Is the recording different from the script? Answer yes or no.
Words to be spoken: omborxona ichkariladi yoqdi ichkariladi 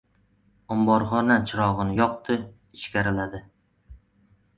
yes